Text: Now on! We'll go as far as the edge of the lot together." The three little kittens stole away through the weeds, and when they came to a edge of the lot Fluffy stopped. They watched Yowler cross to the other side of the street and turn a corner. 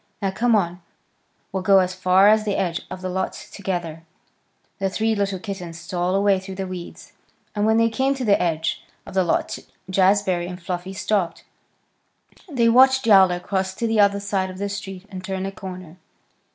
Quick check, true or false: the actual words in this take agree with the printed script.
false